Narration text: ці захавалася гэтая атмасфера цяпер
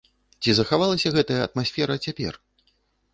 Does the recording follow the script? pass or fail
pass